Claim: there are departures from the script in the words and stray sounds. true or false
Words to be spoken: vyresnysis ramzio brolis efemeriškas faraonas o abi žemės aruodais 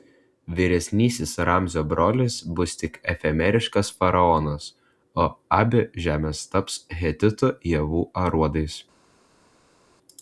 true